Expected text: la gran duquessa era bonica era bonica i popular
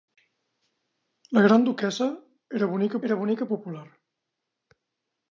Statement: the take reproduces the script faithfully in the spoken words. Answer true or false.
true